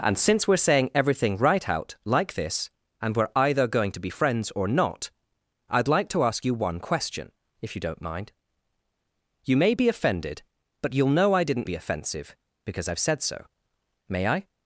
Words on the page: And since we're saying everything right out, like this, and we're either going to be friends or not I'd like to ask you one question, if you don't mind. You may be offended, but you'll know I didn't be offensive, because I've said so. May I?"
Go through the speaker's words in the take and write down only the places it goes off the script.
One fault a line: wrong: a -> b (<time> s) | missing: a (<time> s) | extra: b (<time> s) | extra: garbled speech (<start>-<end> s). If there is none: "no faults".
no faults